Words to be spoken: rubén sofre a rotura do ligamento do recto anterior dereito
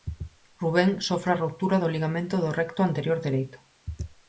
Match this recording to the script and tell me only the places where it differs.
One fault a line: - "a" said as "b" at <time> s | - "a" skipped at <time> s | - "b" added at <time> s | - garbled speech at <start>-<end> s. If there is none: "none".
none